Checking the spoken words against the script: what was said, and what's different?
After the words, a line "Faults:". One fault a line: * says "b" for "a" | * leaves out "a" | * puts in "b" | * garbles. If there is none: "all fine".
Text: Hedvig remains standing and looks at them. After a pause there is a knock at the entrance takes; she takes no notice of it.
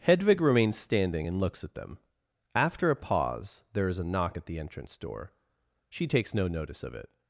Hedvig remains standing and looks at them. After a pause there is a knock at the entrance door; she takes no notice of it.
Faults:
* says "door" for "takes"